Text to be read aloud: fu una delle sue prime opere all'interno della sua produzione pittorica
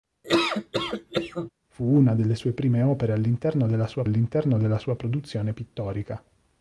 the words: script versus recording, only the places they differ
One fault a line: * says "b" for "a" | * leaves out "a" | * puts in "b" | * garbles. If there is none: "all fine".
* puts in "all'interno della sua"